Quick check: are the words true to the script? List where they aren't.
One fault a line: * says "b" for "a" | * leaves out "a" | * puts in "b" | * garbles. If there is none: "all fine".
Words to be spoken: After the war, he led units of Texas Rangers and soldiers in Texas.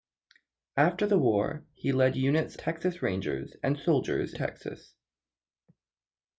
* leaves out "of"
* leaves out "in"